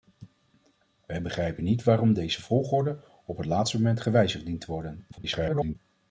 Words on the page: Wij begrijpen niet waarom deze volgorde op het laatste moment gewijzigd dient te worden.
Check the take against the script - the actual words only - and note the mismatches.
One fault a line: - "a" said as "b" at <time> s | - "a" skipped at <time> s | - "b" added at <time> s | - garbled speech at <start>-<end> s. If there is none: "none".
- garbled speech at 5.1-5.8 s